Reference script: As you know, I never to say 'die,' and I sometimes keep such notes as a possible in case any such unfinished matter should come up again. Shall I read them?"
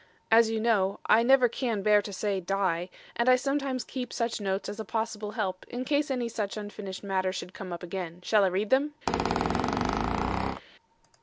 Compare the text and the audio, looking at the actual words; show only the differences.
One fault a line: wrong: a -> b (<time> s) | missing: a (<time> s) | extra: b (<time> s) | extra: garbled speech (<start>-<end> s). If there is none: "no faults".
extra: can bear (1.5 s)
extra: help (5.3 s)